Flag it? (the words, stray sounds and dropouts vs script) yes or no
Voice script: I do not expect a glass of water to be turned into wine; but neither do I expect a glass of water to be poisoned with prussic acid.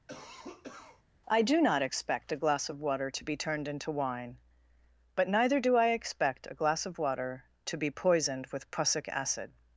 yes